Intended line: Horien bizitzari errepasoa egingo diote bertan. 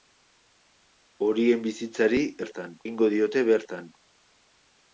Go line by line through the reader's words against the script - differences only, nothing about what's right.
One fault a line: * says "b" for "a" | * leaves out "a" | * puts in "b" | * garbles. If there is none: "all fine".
* says "bertan" for "errepasoa"